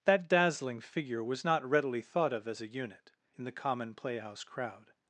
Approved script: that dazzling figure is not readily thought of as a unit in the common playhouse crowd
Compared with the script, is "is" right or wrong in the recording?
wrong